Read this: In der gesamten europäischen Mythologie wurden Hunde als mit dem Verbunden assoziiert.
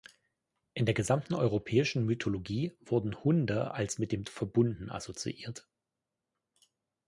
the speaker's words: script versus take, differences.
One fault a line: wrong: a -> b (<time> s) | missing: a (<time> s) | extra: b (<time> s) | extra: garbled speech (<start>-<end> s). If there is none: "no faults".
no faults